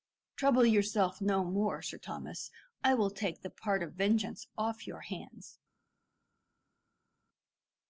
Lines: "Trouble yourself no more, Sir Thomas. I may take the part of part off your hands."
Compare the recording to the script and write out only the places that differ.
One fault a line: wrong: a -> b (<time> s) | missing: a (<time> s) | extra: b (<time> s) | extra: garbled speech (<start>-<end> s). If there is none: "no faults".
wrong: may -> will (3.0 s)
wrong: part -> vengeance (3.9 s)